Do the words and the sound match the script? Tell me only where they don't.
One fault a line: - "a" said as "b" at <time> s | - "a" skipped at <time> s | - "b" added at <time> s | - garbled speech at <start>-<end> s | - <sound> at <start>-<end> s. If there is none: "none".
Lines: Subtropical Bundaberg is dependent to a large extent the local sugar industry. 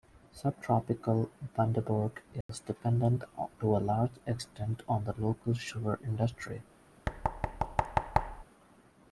- dropout at 2.4-2.5 s
- "on" added at 4.9 s
- thud at 7.1-8.4 s